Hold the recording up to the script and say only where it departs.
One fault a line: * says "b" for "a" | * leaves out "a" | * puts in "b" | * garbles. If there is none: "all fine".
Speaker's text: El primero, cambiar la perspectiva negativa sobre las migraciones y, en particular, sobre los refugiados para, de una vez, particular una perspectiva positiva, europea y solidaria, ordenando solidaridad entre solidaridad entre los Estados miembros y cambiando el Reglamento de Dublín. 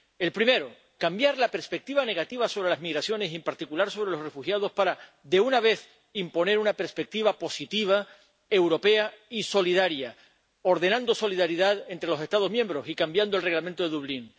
* says "imponer" for "particular"
* leaves out "solidaridad entre"